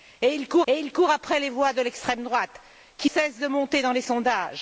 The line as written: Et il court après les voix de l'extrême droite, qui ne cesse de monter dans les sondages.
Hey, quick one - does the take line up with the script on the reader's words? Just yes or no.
no